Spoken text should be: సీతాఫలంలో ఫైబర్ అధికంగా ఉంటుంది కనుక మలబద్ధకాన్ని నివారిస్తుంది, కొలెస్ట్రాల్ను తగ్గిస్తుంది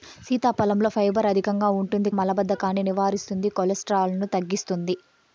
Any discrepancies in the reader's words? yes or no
yes